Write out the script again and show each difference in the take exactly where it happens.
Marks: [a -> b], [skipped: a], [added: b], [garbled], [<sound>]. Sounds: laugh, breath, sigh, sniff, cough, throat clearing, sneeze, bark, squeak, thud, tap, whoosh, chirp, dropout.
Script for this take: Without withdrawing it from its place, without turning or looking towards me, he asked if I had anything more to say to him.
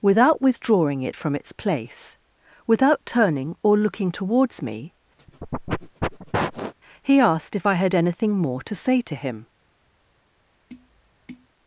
Without withdrawing it from its place, without turning or looking towards me, [sniff] he asked if I had anything more to say to him. [tap]